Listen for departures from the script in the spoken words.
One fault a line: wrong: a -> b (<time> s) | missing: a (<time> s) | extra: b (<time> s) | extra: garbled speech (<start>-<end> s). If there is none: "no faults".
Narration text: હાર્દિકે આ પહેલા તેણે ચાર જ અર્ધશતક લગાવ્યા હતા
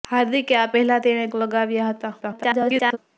missing: ચાર જ અર્ધશતક (1.2 s)
extra: garbled speech (2.2-3.0 s)